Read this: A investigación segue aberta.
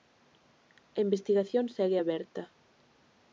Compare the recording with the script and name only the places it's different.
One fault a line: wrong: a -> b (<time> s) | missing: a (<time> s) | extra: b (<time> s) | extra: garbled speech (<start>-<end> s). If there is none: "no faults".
no faults